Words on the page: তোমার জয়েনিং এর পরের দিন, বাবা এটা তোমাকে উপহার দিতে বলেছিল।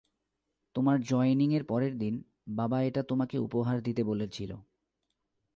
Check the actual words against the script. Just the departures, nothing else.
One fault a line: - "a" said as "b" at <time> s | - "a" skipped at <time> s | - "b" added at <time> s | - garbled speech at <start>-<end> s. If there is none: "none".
none